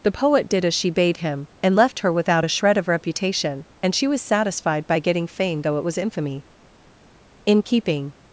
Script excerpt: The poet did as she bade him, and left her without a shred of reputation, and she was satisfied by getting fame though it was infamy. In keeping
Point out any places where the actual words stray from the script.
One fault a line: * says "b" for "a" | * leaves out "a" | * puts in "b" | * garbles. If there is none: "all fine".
all fine